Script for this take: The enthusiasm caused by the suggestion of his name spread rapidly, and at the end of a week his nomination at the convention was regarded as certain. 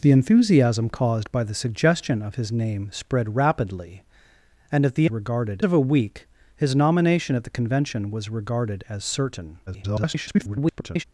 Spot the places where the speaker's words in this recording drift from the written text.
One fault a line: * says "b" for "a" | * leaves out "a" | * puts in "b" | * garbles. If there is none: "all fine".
* says "regarded" for "end"
* garbles